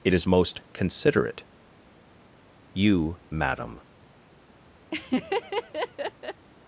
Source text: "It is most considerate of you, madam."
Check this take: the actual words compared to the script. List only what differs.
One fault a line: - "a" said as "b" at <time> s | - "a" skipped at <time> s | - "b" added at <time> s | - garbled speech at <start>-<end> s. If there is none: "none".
- "of" skipped at 1.4 s